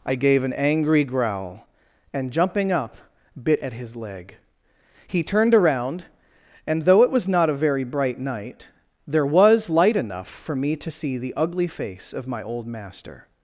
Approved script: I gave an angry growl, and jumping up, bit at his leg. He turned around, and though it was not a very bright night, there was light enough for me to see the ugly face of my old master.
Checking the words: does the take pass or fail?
pass